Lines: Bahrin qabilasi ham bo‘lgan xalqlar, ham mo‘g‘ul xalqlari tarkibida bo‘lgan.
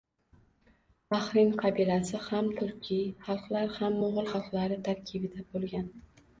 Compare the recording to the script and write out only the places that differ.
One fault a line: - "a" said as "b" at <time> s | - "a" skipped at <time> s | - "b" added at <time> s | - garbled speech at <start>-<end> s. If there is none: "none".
- "bo‘lgan" said as "turkiy" at 2.6 s